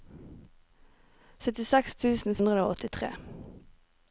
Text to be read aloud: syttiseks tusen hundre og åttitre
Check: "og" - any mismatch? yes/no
no